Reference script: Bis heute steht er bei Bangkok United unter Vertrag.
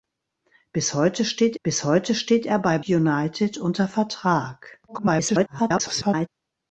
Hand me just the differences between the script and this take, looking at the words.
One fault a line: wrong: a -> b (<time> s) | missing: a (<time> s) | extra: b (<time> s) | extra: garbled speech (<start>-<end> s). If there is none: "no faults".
extra: bis heute steht (1.6 s)
missing: Bangkok (2.8 s)
extra: garbled speech (4.9-6.3 s)